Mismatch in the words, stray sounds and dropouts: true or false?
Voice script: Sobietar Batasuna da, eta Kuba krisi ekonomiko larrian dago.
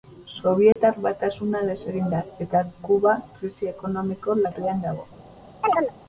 true